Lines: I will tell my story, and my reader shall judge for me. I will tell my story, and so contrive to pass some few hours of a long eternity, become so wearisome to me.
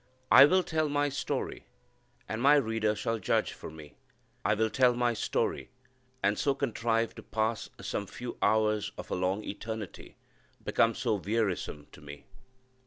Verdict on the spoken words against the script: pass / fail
pass